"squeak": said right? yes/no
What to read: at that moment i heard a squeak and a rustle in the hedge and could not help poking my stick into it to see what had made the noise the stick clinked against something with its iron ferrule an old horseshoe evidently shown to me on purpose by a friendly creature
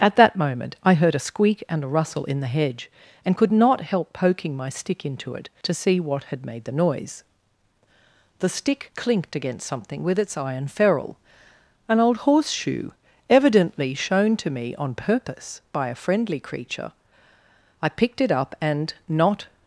yes